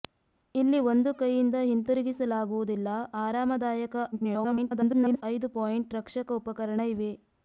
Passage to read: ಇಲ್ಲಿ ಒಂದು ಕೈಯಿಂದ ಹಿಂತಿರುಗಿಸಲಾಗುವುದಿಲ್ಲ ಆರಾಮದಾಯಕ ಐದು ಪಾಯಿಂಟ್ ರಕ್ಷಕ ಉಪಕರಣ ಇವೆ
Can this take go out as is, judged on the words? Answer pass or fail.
fail